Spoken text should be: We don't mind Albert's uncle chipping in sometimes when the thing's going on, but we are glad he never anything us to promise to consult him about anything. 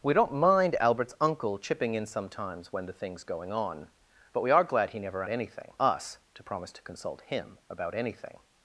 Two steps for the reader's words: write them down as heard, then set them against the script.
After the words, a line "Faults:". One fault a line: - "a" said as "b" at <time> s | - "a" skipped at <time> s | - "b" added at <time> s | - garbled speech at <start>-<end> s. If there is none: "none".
We don't mind Albert's uncle chipping in sometimes when the thing's going on, but we are glad he never anything us to promise to consult him about anything.
Faults:
none